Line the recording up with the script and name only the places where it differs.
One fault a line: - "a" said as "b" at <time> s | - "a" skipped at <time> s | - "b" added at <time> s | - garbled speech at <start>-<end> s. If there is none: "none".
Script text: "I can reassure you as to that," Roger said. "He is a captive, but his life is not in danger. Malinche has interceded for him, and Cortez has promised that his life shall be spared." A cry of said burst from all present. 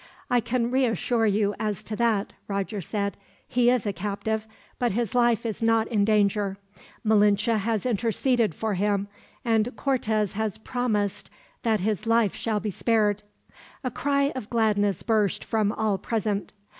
- "said" said as "gladness" at 14.5 s